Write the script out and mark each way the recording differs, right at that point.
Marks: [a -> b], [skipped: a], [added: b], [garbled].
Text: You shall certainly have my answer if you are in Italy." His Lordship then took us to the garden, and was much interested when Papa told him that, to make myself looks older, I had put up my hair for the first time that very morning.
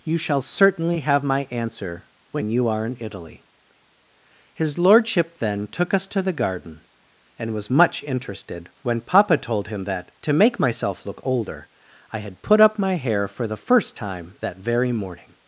You shall certainly have my answer [if -> when] you are in Italy." His Lordship then took us to the garden, and was much interested when Papa told him that, to make myself [looks -> look] older, I had put up my hair for the first time that very morning.